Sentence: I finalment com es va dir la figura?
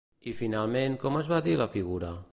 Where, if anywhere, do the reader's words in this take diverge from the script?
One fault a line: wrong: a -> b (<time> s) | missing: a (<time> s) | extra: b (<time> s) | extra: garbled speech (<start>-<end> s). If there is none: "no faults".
no faults